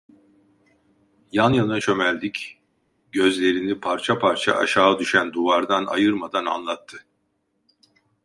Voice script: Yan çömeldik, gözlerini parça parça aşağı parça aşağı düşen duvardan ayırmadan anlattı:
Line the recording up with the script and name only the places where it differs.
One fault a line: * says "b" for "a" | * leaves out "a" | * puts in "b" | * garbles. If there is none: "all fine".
* puts in "yana"
* leaves out "parça aşağı"